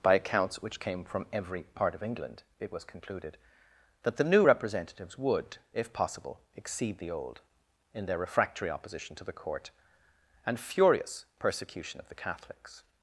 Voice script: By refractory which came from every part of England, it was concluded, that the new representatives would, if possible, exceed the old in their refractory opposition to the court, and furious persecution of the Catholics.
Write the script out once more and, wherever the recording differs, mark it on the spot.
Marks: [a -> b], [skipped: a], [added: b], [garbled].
By [refractory -> accounts] which came from every part of England, it was concluded, that the new representatives would, if possible, exceed the old in their refractory opposition to the court, and furious persecution of the Catholics.